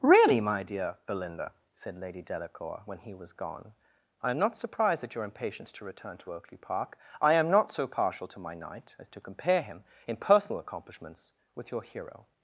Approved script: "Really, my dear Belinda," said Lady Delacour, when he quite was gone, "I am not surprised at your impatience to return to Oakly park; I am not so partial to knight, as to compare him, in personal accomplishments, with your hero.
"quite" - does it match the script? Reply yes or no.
no